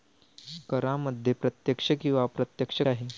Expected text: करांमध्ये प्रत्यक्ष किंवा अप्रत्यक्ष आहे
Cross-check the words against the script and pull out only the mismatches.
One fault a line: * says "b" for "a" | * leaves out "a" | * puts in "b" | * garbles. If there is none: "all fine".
all fine